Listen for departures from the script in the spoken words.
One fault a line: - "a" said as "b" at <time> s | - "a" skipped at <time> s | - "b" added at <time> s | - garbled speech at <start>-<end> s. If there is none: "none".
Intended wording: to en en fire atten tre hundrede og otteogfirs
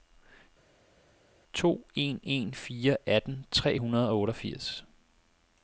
none